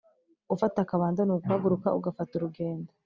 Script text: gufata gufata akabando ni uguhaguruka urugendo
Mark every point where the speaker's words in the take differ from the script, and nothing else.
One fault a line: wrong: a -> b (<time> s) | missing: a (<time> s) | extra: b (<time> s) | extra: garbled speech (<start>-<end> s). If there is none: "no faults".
missing: gufata (0.8 s)
extra: ugafata (2.0 s)